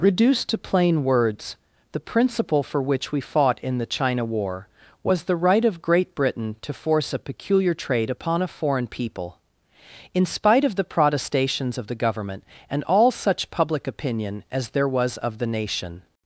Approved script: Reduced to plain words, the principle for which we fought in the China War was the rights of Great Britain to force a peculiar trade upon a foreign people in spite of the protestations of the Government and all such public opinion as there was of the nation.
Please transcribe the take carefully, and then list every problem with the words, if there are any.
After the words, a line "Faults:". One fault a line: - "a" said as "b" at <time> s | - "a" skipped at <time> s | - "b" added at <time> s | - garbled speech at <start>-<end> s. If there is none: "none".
Reduced to plain words, the principle for which we fought in the China War was the right of Great Britain to force a peculiar trade upon a foreign people in spite of the protestations of the Government and all such public opinion as there was of the nation.
Faults:
- "rights" said as "right" at 5.3 s